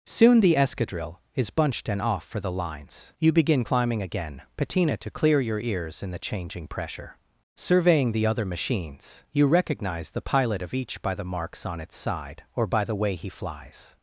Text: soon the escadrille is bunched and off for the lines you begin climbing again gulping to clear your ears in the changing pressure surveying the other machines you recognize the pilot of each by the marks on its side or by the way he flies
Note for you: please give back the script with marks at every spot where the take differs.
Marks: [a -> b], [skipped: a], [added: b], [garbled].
soon the escadrille is bunched and off for the lines you begin climbing again [gulping -> patina] to clear your ears in the changing pressure surveying the other machines you recognize the pilot of each by the marks on its side or by the way he flies